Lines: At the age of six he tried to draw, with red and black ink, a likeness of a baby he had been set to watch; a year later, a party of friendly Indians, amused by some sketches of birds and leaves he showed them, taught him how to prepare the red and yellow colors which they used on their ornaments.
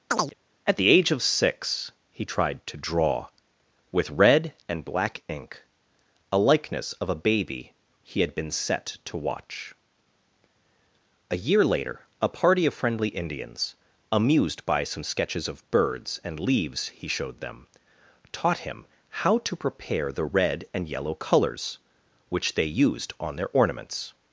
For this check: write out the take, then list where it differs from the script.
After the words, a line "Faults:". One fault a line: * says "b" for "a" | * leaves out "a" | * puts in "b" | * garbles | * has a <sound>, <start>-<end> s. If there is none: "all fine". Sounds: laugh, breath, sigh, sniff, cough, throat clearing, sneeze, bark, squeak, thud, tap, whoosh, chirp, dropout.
At the age of six he tried to draw, with red and black ink, a likeness of a baby he had been set to watch; a year later, a party of friendly Indians, amused by some sketches of birds and leaves he showed them, taught him how to prepare the red and yellow colors which they used on their ornaments.
Faults:
* has a chirp, 0.1-0.3 s